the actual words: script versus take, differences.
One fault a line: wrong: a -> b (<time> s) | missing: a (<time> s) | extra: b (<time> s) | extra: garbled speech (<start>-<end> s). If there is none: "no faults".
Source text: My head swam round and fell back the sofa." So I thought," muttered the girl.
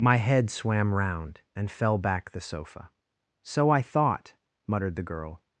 no faults